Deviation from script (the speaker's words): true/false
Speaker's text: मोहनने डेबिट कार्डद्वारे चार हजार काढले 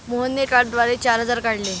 true